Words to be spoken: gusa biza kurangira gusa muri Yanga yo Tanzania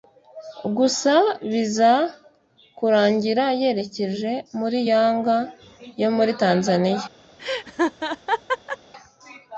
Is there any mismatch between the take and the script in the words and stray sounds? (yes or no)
yes